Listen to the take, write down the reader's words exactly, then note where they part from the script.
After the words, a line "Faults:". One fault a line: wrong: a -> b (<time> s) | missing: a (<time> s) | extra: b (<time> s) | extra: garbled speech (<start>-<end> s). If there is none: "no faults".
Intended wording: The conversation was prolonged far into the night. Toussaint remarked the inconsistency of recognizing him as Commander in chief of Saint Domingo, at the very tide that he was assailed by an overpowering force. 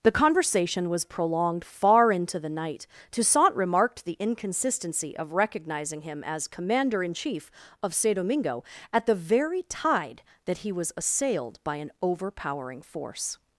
The conversation was prolonged far into the night. Toussaint remarked the inconsistency of recognizing him as Commander in chief of Saint Domingo, at the very tide that he was assailed by an overpowering force.
Faults:
no faults